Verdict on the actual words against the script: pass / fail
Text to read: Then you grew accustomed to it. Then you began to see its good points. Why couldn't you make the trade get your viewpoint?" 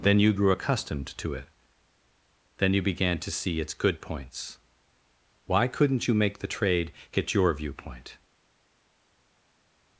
pass